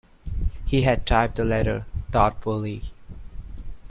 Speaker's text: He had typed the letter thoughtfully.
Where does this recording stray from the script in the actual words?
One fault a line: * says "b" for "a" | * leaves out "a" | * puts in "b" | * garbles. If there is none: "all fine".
all fine